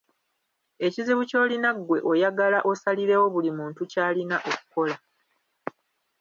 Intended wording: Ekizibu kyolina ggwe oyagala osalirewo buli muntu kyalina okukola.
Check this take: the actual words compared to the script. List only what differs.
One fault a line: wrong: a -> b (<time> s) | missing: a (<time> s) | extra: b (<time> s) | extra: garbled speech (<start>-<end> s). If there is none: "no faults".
no faults